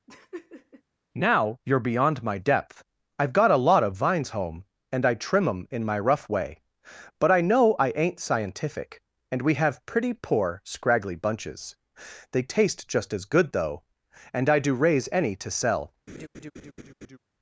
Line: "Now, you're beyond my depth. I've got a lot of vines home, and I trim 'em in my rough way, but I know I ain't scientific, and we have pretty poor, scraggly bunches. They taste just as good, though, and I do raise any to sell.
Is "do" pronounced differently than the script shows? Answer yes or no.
no